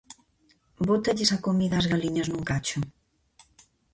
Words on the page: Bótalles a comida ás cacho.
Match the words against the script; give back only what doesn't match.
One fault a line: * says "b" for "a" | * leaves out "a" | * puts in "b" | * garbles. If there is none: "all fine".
* puts in "galiñas nun"